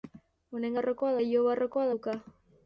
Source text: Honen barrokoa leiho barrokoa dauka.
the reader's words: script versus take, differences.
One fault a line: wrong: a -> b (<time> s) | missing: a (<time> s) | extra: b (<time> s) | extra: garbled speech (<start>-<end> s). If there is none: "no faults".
no faults